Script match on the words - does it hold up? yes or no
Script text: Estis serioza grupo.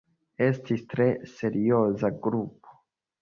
no